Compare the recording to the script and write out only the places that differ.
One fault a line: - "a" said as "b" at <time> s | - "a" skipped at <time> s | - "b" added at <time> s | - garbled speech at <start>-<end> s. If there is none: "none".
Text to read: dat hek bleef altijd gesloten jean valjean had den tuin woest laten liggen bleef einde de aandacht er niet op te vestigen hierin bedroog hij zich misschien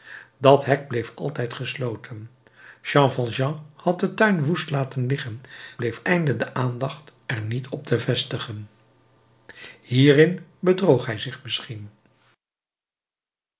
none